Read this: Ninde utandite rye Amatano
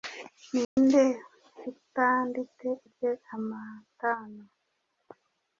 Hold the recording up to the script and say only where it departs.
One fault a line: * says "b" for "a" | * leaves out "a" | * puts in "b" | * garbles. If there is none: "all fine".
all fine